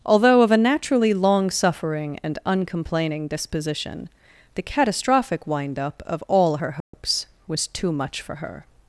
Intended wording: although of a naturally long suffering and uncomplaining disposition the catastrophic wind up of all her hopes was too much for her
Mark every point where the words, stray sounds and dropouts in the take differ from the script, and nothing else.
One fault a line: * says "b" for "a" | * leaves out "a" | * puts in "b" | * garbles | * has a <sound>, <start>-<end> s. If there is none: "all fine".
* has a dropout, 6.8-6.9 s